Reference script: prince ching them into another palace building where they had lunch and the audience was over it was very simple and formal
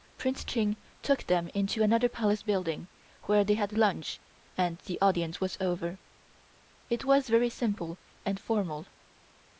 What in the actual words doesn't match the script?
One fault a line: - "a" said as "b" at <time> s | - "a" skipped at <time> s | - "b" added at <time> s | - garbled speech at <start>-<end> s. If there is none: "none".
- "took" added at 1.0 s